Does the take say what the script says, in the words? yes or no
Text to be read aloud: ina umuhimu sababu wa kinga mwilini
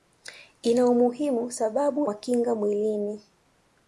yes